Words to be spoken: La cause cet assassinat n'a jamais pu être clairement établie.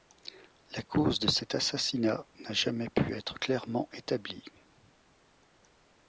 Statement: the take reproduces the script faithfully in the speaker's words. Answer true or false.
false